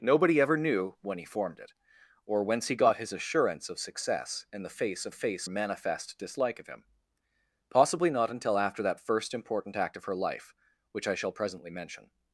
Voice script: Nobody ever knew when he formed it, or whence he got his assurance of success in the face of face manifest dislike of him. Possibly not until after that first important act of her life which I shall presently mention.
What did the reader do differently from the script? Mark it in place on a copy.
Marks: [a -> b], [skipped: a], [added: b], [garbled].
Nobody ever knew when he formed it, or whence he got his assurance of success in the face of face manifest dislike of him. Possibly not until after that first important act of her life which I shall presently mention.